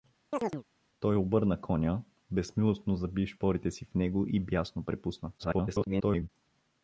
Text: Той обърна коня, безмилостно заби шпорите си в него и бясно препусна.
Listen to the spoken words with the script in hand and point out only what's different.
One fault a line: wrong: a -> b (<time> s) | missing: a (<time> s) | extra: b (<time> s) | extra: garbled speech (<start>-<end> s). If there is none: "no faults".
extra: garbled speech (5.4-6.3 s)